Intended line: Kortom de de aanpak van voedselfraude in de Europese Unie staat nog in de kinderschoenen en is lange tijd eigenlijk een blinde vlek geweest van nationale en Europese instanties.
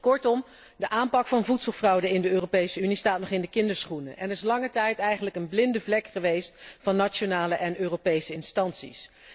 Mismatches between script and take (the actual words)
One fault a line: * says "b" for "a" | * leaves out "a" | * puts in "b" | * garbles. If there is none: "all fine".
* leaves out "de"